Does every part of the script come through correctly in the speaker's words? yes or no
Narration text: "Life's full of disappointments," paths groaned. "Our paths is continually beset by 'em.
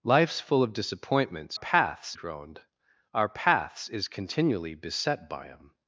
yes